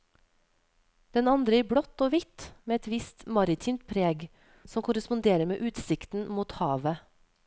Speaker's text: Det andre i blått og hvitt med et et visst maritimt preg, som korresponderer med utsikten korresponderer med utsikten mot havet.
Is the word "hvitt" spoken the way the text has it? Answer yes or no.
yes